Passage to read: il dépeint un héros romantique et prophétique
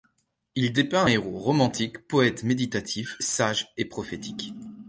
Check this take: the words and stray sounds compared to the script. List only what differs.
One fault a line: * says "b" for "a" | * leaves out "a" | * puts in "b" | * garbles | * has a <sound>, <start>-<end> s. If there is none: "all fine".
* puts in "poète méditatif sage"